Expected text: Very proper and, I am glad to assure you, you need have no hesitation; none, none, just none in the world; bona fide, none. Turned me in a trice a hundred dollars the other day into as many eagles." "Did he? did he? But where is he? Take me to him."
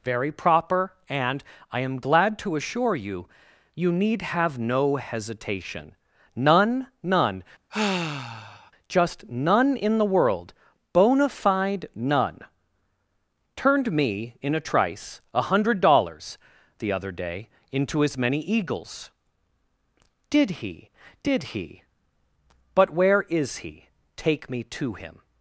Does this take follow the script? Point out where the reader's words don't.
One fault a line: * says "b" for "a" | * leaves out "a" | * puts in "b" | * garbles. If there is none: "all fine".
all fine